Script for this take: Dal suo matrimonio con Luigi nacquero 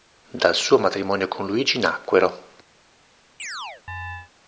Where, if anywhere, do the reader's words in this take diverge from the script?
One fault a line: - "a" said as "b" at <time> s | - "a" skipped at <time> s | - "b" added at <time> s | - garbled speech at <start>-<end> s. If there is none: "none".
none